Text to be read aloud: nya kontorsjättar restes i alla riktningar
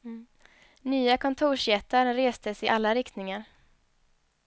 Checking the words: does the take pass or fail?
pass